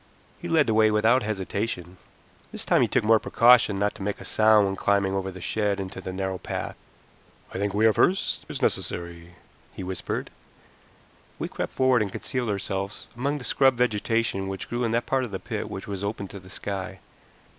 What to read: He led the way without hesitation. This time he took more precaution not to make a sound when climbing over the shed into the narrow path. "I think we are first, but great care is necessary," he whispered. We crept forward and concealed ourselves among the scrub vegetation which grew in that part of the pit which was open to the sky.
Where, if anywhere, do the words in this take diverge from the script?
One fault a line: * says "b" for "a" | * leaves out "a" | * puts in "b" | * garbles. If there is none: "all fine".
* leaves out "but great care"